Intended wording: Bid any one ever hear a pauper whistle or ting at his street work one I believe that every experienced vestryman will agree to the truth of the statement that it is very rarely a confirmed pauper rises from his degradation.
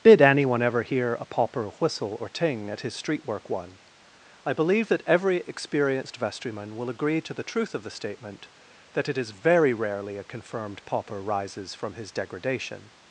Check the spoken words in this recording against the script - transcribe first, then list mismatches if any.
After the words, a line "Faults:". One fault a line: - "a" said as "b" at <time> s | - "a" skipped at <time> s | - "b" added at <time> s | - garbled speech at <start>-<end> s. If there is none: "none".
Did anyone ever hear a pauper whistle or ting at his street work one I believe that every experienced vestryman will agree to the truth of the statement that it is very rarely a confirmed pauper rises from his degradation.
Faults:
- "Bid any one" said as "Did anyone" at 0.0 s